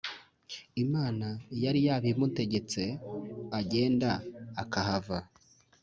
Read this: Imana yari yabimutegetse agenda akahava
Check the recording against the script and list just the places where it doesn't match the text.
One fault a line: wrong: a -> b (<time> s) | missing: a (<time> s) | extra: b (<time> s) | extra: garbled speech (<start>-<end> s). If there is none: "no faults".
no faults